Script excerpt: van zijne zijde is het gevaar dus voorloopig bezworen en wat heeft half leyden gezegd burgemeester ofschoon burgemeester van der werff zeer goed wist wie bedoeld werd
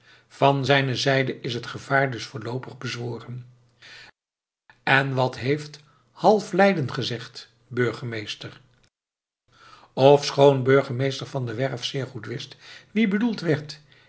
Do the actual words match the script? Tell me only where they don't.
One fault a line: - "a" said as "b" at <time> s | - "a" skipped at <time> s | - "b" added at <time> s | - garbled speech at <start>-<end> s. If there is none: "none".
none